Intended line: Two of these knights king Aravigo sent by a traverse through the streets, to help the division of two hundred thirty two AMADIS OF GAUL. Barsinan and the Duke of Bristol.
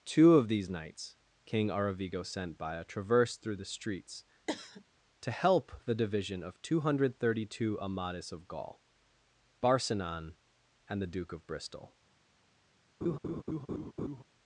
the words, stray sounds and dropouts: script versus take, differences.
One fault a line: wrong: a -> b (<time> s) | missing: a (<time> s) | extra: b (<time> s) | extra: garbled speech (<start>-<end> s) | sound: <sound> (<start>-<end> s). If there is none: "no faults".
sound: cough (4.5-4.8 s)
sound: laugh (13.0-14.2 s)